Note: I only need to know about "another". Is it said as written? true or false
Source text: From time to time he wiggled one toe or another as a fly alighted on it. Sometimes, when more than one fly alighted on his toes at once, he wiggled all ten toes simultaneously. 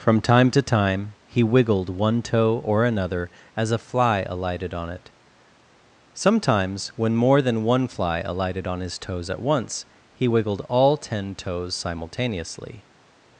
true